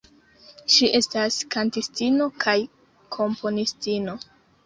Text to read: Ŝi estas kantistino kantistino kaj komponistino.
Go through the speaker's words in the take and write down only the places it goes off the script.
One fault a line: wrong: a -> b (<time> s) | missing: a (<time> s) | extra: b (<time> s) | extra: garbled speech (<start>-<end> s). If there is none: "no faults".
missing: kantistino (2.3 s)